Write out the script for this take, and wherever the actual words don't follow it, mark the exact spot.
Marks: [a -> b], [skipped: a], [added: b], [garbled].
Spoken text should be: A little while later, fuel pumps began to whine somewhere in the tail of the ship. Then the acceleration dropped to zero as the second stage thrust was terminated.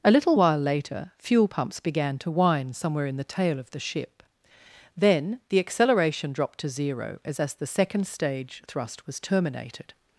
A little while later, fuel pumps began to whine somewhere in the tail of the ship. Then the acceleration dropped to zero as [added: as] the second stage thrust was terminated.